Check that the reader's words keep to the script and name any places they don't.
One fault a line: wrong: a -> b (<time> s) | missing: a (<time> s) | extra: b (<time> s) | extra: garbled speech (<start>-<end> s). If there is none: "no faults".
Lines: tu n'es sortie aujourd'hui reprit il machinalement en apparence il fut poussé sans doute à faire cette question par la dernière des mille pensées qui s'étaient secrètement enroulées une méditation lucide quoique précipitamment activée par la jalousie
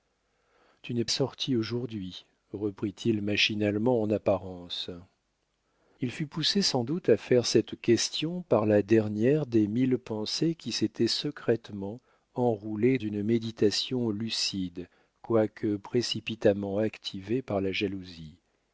no faults